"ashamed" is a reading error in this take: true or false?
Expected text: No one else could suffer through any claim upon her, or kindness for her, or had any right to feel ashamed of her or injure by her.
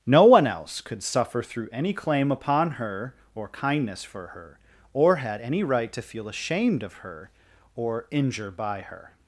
false